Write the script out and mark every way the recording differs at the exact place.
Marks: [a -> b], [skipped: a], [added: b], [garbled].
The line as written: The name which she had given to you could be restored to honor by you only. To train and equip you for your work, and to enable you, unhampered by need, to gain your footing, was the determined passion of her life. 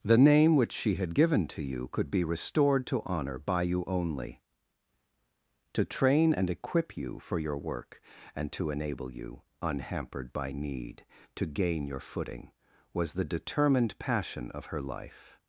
The name which she had given to you could be restored to honor by you only. To train and equip you for your work, and to enable you, unhampered by need, to gain your footing, was the determined passion of her life.